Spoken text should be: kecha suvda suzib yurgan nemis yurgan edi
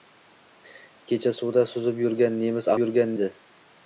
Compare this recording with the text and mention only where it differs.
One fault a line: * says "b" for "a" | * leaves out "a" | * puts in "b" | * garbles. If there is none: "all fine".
all fine